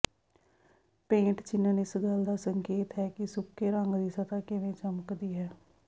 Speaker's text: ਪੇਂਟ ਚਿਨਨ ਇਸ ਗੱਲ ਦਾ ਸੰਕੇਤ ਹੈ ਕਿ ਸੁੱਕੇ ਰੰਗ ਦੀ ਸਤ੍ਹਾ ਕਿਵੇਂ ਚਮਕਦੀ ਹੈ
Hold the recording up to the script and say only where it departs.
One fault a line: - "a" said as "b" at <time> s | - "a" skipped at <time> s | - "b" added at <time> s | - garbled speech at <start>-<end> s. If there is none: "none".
none